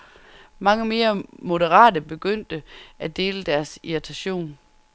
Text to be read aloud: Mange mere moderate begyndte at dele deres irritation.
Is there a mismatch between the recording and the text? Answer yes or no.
no